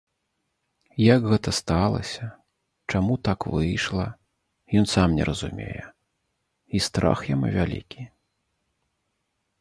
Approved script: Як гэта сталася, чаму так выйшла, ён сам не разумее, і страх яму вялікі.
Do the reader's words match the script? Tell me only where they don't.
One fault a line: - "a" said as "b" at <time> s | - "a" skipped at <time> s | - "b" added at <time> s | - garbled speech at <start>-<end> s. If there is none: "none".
none